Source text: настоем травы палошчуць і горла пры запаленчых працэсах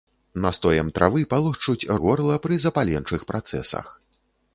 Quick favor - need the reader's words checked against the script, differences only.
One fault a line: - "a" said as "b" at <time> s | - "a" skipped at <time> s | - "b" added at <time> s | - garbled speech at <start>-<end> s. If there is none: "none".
none